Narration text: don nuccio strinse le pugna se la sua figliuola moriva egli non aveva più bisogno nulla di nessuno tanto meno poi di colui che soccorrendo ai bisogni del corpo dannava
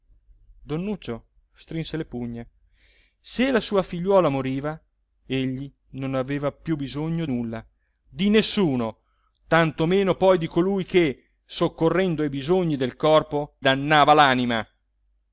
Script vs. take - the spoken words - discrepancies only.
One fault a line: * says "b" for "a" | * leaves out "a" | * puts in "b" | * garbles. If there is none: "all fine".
all fine